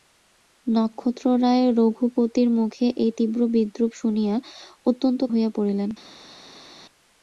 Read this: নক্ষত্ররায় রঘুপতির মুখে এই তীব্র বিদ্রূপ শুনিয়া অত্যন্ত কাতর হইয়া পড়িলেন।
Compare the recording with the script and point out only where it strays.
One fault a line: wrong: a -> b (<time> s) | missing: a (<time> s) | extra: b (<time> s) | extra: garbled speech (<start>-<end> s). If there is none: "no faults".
missing: কাতর (5.2 s)